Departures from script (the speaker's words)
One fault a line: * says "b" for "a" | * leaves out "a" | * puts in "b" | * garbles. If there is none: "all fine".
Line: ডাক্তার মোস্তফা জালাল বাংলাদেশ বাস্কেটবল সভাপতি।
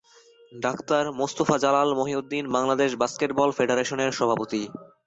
* puts in "মহিউদ্দিন"
* puts in "ফেডারেশনের"